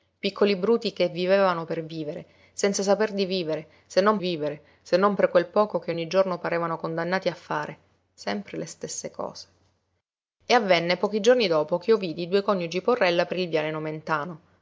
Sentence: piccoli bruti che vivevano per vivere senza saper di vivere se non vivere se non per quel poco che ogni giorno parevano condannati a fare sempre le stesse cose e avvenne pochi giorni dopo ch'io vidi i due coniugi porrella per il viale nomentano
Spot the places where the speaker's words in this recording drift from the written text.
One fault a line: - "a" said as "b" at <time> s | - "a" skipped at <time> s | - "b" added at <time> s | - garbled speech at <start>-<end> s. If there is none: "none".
none